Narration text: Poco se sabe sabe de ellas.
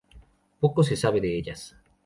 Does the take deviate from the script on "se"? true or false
false